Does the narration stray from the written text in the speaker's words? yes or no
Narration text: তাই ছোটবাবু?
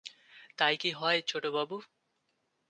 yes